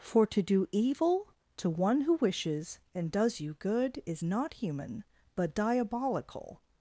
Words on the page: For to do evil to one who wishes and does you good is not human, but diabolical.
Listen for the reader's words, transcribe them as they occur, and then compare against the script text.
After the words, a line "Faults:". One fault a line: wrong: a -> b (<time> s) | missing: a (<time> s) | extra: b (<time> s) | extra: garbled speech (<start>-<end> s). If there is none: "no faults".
For to do evil to one who wishes and does you good is not human, but diabolical.
Faults:
no faults